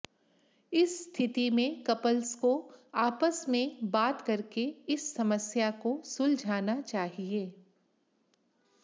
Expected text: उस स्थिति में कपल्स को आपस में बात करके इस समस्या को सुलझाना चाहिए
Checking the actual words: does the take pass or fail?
fail